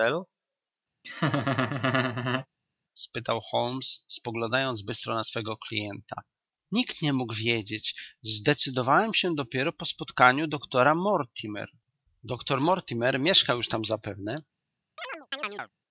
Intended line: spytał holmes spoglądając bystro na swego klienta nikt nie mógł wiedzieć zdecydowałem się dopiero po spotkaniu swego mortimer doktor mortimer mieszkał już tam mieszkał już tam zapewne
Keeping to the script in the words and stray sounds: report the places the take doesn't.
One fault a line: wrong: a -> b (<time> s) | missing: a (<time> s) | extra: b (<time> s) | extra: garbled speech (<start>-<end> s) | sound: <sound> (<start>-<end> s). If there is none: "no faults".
sound: laugh (1.0-2.5 s)
wrong: swego -> doktora (10.5 s)
missing: mieszkał już tam (13.8 s)
sound: chirp (15.0-15.7 s)